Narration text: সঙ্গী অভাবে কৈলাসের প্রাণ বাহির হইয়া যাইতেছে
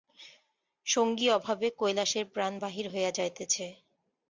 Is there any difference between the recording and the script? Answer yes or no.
no